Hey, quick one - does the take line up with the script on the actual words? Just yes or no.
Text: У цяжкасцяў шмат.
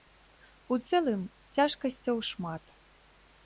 no